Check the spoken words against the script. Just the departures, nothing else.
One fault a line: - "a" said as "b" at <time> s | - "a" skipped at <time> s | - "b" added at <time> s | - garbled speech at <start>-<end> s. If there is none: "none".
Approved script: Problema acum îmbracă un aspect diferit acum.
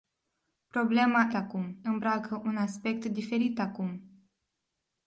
none